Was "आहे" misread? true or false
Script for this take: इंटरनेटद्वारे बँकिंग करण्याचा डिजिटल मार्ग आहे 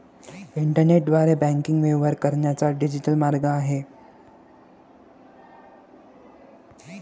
false